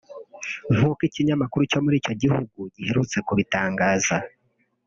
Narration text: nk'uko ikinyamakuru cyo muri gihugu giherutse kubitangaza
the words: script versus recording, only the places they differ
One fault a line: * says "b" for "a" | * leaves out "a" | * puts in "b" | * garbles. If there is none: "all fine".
* puts in "icyo"